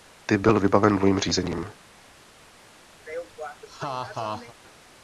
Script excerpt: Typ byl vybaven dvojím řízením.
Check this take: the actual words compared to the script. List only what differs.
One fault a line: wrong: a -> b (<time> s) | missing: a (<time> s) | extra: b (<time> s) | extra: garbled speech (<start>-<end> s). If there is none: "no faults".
no faults